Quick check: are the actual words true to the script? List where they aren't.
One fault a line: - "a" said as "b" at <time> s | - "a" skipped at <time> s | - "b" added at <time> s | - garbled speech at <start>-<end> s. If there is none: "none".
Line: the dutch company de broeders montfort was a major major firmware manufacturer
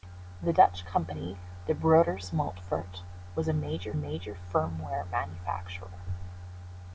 none